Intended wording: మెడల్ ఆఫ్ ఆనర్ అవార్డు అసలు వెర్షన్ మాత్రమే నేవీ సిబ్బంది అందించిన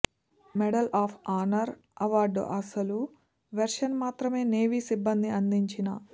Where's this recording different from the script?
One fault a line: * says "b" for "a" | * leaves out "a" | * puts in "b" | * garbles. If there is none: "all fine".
all fine